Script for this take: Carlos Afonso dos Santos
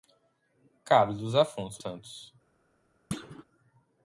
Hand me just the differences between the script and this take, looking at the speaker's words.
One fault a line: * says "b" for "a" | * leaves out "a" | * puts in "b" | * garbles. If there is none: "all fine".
* leaves out "dos"